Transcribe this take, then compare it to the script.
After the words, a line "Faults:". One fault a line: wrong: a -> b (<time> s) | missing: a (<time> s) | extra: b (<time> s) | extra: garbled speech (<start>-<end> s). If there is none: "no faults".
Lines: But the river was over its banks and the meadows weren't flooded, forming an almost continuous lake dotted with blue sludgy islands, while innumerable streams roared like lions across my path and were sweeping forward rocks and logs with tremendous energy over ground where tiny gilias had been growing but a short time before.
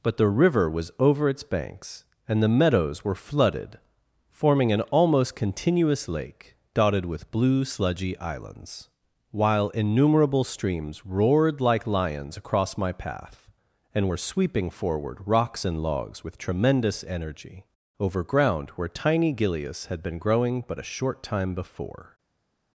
But the river was over its banks and the meadows were flooded, forming an almost continuous lake dotted with blue sludgy islands, while innumerable streams roared like lions across my path and were sweeping forward rocks and logs with tremendous energy over ground where tiny gilias had been growing but a short time before.
Faults:
wrong: weren't -> were (3.0 s)